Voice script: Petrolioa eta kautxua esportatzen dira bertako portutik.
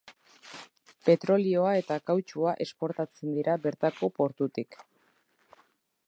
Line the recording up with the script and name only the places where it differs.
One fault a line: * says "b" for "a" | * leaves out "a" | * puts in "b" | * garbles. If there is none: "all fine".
all fine